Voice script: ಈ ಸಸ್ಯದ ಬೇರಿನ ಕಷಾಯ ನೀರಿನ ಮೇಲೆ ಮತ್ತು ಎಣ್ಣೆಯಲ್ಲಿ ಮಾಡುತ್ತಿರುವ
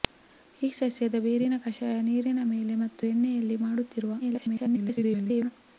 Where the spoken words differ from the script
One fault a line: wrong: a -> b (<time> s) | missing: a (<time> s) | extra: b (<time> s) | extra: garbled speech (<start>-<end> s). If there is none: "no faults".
extra: garbled speech (4.2-5.5 s)